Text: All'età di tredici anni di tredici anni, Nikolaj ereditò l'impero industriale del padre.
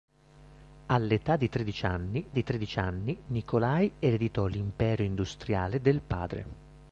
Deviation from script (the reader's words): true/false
false